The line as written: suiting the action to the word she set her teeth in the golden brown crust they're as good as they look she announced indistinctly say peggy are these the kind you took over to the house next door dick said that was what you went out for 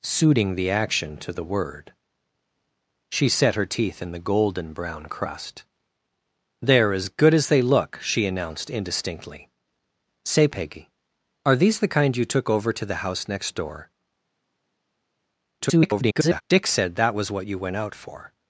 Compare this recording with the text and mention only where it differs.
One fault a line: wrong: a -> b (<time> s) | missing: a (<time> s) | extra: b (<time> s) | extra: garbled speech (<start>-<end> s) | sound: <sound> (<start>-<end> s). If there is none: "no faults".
extra: garbled speech (15.6-16.4 s)